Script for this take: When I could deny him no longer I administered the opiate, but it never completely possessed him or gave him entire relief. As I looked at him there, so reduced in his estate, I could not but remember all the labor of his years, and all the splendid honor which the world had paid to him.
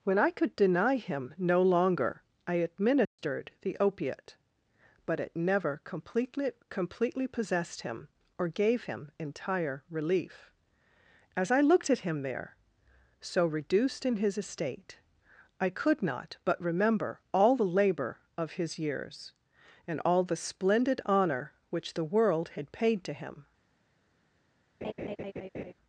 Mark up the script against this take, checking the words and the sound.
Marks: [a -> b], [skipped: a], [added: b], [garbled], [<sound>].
When I could deny him no longer I administered [dropout] the opiate, but it never completely [added: completely] possessed him or gave him entire relief. As I looked at him there, so reduced in his estate, I could not but remember all the labor of his years, and all the splendid honor which the world had paid to him. [laugh]